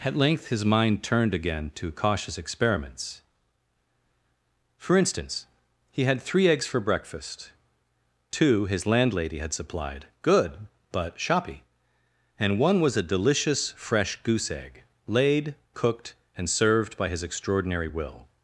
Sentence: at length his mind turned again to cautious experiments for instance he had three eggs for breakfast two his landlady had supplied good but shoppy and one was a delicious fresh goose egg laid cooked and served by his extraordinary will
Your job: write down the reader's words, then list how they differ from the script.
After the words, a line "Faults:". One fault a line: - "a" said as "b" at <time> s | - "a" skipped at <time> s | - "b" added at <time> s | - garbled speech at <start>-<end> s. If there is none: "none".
at length his mind turned again to cautious experiments for instance he had three eggs for breakfast two his landlady had supplied good but shoppy and one was a delicious fresh goose egg laid cooked and served by his extraordinary will
Faults:
none